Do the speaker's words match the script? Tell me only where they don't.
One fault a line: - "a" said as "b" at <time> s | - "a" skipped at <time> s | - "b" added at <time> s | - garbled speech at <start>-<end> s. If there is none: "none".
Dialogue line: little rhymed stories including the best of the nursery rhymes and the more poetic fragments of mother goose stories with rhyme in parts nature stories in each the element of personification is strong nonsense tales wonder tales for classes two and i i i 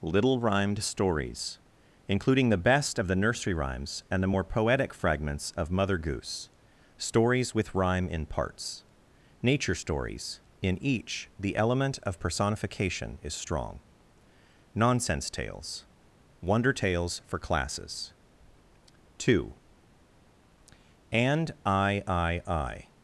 none